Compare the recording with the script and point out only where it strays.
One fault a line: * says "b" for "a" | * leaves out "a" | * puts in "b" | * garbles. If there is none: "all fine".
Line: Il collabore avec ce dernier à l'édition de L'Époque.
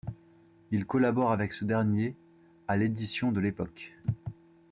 all fine